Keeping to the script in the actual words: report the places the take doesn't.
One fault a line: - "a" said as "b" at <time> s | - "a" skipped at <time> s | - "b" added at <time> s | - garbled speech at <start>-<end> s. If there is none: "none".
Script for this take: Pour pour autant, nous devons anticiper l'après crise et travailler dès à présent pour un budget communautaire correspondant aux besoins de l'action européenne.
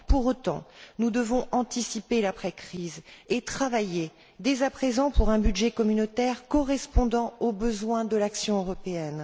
- "pour" skipped at 0.2 s